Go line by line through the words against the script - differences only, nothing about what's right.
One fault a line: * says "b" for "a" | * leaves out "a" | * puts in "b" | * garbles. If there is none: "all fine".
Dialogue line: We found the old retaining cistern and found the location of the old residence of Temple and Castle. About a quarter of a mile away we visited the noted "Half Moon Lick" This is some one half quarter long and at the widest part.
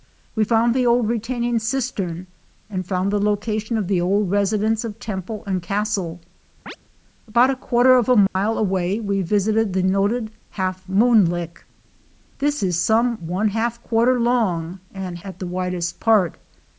all fine